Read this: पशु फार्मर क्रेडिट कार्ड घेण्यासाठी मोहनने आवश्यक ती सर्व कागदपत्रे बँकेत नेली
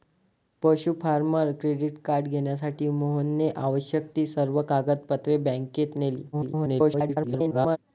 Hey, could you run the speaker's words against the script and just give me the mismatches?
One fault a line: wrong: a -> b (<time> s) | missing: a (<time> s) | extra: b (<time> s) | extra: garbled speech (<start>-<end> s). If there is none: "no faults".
extra: garbled speech (6.3-7.8 s)